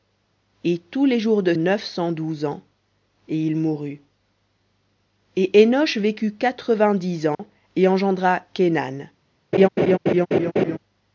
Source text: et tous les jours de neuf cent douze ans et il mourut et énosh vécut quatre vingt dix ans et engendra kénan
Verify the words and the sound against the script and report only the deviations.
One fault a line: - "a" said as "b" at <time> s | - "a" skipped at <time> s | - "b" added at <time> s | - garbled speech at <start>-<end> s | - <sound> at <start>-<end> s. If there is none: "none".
- dropout at 7.3-7.4 s
- laugh at 9.5-10.8 s